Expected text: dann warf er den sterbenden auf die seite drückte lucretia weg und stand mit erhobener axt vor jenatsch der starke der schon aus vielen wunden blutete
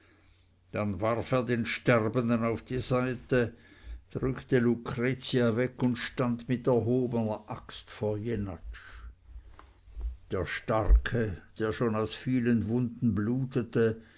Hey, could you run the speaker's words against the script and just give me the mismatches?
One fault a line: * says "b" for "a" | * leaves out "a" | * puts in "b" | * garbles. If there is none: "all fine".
all fine